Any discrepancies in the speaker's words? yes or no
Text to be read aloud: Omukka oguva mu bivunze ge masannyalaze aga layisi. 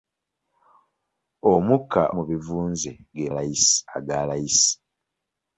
yes